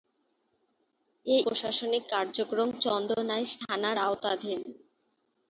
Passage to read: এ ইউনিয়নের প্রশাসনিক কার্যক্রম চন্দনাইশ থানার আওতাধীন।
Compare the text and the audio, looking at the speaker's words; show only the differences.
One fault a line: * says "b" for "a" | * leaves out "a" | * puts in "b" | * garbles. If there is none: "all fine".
* leaves out "ইউনিয়নের"